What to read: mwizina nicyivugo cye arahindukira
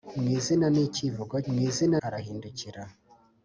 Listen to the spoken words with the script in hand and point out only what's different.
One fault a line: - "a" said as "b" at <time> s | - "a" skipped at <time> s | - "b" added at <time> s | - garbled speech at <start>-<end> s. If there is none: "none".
- "cye" said as "mwizina" at 1.5 s